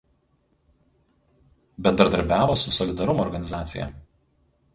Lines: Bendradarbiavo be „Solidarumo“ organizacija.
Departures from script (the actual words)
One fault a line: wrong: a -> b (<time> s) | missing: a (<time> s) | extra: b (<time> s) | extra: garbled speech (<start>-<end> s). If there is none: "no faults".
wrong: be -> su (2.5 s)